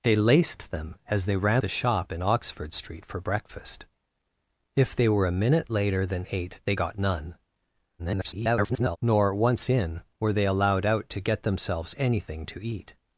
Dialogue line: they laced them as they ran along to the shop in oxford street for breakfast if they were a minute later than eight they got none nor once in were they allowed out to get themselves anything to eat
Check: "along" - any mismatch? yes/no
yes